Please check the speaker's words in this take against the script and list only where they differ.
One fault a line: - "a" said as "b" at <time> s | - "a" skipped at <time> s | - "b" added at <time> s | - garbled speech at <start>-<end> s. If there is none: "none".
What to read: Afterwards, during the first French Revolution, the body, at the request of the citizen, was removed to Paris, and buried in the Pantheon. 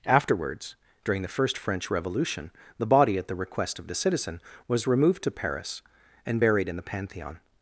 none